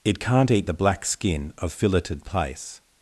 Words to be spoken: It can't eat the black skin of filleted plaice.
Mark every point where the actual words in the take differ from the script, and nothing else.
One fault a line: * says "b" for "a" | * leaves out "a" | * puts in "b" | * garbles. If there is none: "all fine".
all fine